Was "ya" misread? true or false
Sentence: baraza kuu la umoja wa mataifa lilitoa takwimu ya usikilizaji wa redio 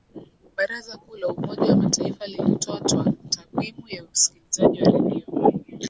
false